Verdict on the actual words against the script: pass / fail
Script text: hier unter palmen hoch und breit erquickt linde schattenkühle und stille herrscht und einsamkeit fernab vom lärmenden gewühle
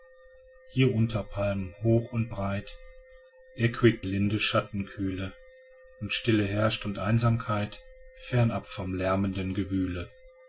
pass